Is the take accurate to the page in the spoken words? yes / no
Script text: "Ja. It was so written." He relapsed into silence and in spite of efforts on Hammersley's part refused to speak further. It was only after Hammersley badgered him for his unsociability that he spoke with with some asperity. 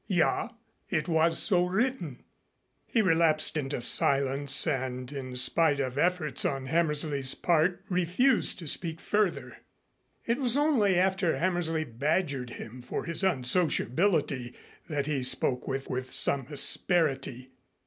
yes